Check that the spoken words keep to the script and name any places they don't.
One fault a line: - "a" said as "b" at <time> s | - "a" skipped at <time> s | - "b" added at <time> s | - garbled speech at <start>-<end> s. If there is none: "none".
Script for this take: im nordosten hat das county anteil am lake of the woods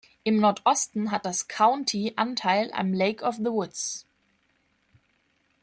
none